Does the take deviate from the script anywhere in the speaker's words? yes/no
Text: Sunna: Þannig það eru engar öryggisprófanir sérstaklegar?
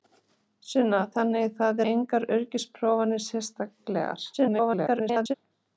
yes